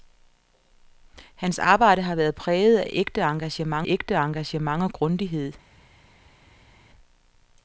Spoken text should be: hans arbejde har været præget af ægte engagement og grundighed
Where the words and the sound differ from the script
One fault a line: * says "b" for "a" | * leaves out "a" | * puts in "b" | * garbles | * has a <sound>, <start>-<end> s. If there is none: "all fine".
* puts in "ægte engagement"